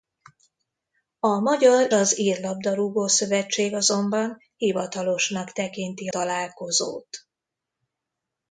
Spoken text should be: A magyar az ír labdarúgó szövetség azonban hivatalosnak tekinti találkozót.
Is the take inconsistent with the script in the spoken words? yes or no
no